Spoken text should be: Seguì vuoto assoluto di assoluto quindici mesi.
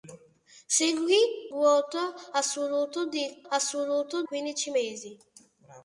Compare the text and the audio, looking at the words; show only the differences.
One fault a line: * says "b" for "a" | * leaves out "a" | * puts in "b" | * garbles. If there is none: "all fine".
all fine